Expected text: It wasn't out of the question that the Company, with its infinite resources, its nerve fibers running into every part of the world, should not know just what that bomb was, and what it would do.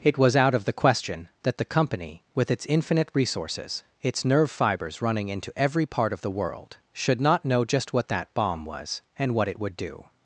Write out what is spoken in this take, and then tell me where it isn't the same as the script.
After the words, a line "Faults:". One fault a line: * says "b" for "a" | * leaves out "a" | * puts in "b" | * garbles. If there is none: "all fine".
It was out of the question that the Company, with its infinite resources, its nerve fibers running into every part of the world, should not know just what that bomb was, and what it would do.
Faults:
* says "was" for "wasn't"